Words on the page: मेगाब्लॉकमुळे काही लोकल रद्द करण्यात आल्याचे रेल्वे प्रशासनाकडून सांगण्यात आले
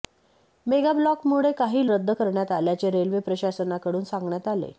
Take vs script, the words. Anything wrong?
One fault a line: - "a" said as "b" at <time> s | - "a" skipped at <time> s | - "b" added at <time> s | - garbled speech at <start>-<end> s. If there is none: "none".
- "लोकल" skipped at 1.9 s